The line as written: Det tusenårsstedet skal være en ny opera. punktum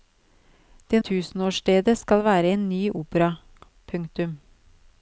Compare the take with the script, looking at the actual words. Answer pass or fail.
pass